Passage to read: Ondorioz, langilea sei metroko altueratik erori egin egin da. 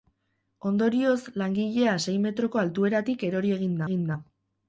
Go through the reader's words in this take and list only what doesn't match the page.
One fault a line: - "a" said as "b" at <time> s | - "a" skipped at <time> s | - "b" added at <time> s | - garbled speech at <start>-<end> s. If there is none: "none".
none